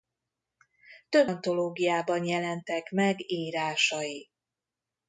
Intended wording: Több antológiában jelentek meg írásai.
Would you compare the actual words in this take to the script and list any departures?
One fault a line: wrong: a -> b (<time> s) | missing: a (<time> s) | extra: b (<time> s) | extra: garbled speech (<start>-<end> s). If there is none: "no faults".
no faults